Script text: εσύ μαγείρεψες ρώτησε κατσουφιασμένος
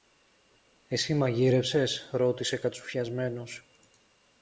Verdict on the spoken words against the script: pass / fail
pass